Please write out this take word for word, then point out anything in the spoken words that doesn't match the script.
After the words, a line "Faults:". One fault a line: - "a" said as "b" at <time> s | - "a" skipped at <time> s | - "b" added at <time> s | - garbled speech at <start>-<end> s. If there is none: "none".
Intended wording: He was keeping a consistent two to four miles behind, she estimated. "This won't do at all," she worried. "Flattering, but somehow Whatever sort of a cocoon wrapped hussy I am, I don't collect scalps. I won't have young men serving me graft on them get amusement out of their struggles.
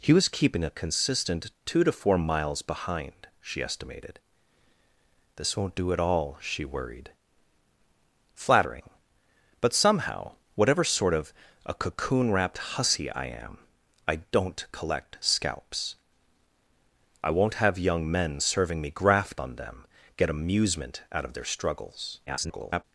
He was keeping a consistent two to four miles behind, she estimated. "This won't do at all," she worried. "Flattering, but somehow Whatever sort of a cocoon wrapped hussy I am, I don't collect scalps. I won't have young men serving me graft on them get amusement out of their struggles. [garbled]
Faults:
- garbled speech at 22.3-22.8 s